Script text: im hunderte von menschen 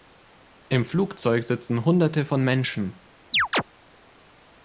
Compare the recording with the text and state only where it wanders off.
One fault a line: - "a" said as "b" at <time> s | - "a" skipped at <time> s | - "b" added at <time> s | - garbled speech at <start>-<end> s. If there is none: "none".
- "flugzeug sitzen" added at 0.8 s